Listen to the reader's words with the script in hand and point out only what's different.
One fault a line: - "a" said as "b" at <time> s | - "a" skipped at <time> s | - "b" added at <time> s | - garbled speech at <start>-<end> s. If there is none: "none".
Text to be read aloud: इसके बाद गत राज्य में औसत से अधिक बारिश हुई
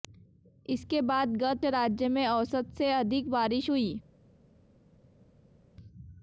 none